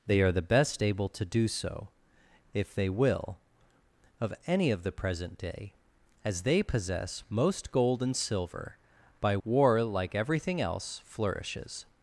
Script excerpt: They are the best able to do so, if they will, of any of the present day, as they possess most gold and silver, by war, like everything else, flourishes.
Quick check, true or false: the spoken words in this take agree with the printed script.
true